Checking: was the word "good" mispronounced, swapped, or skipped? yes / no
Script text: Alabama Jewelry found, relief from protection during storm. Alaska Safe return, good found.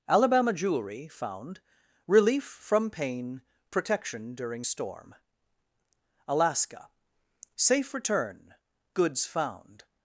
yes